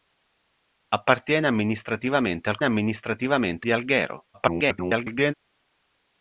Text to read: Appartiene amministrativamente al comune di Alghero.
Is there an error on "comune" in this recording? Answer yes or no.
yes